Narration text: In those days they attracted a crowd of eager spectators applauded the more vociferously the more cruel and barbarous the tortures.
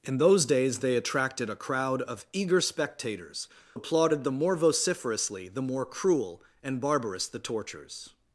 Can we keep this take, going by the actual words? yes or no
yes